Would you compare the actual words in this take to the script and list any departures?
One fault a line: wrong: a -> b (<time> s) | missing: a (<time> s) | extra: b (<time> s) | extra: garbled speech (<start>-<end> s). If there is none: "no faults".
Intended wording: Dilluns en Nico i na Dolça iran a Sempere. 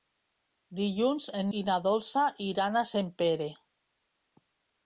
missing: Nico (1.5 s)